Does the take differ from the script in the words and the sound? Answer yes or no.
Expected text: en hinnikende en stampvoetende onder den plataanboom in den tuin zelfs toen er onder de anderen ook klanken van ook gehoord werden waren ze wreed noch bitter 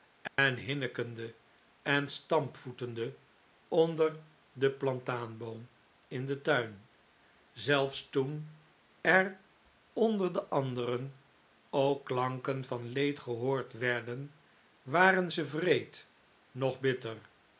yes